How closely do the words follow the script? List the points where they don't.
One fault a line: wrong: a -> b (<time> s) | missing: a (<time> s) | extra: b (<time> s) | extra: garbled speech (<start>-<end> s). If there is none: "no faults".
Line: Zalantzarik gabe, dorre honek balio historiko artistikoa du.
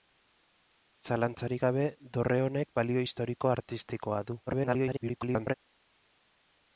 extra: garbled speech (4.5-5.5 s)